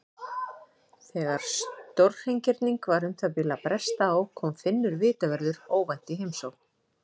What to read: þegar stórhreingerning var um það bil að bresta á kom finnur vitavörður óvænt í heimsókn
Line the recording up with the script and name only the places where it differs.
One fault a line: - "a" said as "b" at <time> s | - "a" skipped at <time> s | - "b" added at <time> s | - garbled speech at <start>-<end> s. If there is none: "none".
none